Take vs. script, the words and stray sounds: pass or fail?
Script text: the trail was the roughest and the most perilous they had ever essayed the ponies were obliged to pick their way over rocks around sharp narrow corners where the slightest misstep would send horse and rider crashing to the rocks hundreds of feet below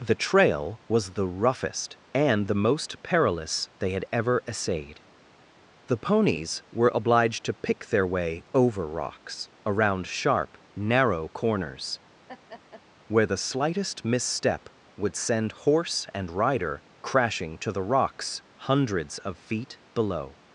fail